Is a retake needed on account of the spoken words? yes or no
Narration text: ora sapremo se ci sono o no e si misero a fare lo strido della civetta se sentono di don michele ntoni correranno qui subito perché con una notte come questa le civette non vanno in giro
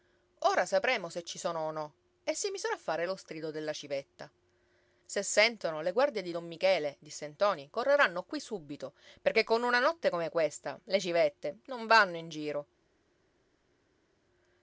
yes